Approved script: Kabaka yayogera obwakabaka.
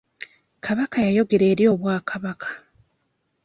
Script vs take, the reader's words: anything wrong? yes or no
yes